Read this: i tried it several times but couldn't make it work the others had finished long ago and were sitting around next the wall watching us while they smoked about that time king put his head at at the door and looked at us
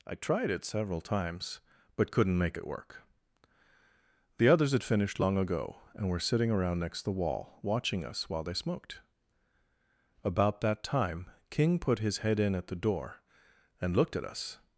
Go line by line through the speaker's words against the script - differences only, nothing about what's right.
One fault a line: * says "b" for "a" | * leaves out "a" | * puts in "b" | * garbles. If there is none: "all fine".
* says "in" for "at"